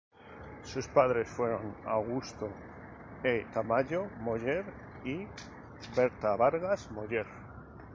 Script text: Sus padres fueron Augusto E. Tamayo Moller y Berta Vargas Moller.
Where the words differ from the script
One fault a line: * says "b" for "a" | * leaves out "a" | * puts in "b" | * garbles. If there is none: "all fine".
all fine